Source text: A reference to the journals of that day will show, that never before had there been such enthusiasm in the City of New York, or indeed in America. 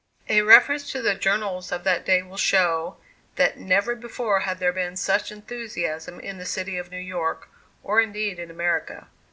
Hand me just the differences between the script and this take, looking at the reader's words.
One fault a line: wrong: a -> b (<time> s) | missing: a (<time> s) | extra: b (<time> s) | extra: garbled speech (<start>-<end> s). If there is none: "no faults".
no faults